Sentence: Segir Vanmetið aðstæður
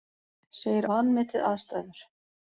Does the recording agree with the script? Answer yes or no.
yes